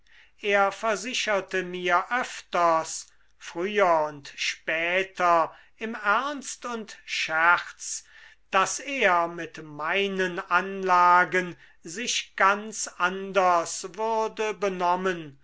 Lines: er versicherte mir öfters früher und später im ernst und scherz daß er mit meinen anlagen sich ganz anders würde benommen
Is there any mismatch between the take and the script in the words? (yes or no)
no